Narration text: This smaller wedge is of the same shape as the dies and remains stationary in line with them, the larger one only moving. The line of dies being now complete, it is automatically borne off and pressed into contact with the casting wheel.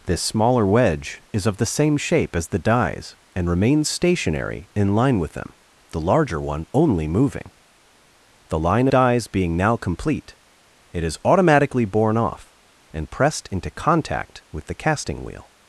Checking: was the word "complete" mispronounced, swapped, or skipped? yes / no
no